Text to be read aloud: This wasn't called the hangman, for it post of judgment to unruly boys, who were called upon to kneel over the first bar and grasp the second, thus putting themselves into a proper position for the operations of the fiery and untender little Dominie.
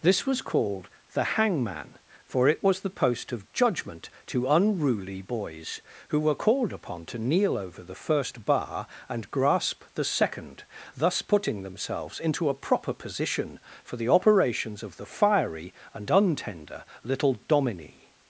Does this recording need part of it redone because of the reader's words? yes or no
yes